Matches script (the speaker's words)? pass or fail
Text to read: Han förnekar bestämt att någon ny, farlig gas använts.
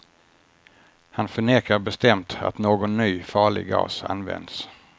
pass